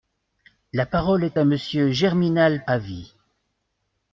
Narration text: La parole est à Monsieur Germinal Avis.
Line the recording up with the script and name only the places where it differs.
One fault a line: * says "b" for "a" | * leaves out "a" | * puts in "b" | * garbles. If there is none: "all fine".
all fine